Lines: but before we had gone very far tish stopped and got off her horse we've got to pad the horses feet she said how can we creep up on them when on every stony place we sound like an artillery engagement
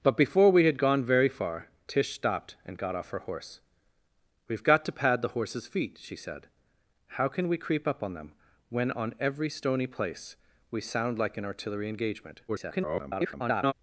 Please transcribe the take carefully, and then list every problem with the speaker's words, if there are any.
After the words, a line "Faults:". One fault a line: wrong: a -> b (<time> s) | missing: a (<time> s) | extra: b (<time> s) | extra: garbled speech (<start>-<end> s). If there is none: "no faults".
but before we had gone very far tish stopped and got off her horse we've got to pad the horses feet she said how can we creep up on them when on every stony place we sound like an artillery engagement [garbled]
Faults:
extra: garbled speech (12.5-13.7 s)